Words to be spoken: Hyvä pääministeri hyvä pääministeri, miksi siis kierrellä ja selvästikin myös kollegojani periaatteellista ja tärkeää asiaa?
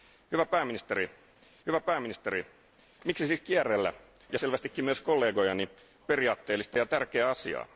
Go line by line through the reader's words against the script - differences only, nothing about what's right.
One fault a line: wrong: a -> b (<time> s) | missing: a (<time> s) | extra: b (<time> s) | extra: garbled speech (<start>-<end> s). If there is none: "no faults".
no faults